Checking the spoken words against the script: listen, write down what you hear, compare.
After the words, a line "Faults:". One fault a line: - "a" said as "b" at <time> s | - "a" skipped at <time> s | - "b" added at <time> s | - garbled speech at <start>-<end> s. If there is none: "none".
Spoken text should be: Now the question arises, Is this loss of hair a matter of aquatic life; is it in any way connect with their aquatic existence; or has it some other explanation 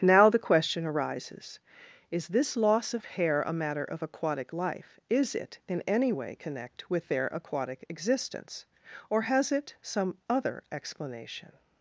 Now the question arises, Is this loss of hair a matter of aquatic life; is it in any way connect with their aquatic existence; or has it some other explanation
Faults:
none